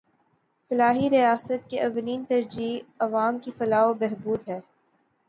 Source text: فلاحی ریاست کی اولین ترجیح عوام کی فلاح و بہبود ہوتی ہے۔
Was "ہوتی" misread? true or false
true